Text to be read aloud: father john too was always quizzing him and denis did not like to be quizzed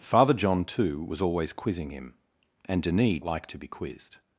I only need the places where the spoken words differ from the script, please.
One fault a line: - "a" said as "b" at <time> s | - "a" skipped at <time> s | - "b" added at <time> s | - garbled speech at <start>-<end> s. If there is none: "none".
- "did not" skipped at 3.2 s